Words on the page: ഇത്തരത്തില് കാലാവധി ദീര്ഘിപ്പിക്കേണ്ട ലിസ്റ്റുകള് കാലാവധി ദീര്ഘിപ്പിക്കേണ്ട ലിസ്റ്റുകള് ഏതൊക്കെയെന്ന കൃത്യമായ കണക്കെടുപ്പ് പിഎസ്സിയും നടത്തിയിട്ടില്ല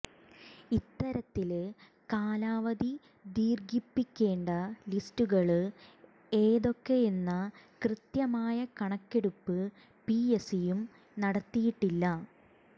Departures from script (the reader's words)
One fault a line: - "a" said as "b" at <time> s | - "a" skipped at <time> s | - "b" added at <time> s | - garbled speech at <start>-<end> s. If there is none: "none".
- "കാലാവധി ദീര്ഘിപ്പിക്കേണ്ട ലിസ്റ്റുകള്" skipped at 5.6 s